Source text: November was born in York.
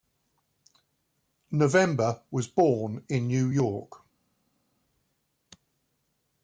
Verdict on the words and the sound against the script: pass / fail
fail